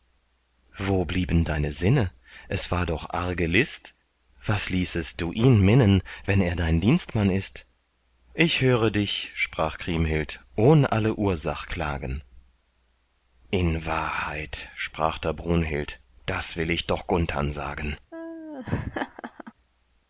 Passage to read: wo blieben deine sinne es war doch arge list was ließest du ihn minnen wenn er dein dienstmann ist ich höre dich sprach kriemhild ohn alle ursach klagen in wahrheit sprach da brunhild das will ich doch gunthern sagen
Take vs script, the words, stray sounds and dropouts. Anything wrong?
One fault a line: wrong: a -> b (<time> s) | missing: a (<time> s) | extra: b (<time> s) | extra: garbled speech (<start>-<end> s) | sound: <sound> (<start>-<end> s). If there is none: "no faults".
sound: laugh (18.1-19.5 s)